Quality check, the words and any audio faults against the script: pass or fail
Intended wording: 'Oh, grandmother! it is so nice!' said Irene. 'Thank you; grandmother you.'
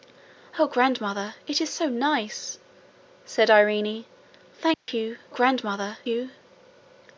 fail